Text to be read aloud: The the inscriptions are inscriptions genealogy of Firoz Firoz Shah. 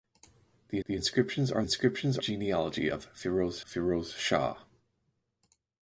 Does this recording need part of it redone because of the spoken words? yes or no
no